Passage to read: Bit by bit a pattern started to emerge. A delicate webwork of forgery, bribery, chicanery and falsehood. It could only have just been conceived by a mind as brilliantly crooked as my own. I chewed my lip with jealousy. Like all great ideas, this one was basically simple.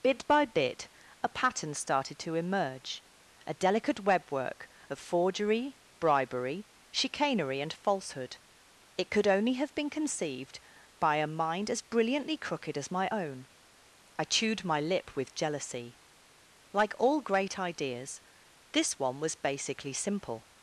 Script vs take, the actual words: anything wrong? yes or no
yes